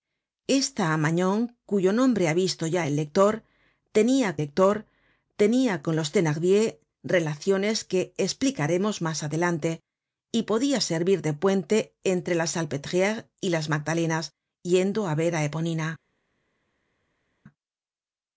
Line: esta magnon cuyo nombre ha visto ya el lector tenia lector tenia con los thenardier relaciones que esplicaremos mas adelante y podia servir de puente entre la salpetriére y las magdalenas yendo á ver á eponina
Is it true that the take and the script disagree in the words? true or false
false